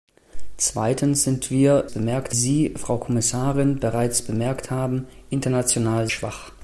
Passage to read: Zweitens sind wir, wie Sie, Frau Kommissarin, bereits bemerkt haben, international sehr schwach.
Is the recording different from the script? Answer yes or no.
yes